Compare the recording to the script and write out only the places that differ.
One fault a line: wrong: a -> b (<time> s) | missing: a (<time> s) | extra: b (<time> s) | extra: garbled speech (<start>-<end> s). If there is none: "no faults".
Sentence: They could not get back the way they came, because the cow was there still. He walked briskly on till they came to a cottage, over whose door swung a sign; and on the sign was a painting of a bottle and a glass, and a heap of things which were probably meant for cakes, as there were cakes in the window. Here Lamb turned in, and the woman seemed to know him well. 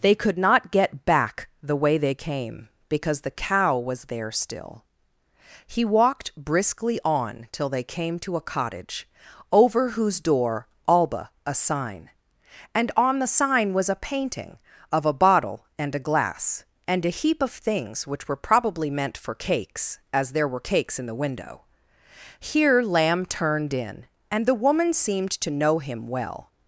wrong: swung -> alba (10.9 s)